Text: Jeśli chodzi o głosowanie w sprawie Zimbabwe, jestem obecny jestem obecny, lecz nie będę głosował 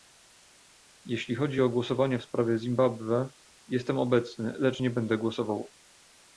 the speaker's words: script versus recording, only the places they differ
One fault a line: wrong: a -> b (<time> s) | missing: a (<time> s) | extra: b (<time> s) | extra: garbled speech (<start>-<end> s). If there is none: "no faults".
missing: jestem obecny (4.5 s)